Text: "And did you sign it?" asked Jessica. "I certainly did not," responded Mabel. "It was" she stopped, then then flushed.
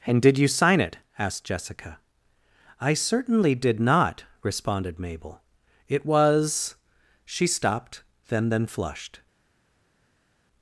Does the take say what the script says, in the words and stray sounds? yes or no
yes